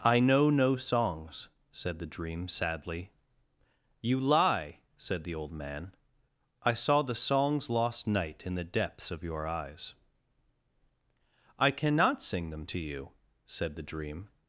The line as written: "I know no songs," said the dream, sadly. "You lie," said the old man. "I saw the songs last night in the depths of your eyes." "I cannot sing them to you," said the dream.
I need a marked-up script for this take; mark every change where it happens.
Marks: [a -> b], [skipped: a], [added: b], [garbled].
"I know no songs," said the dream, sadly. "You lie," said the old man. "I saw the songs [last -> lost] night in the depths of your eyes." "I cannot sing them to you," said the dream.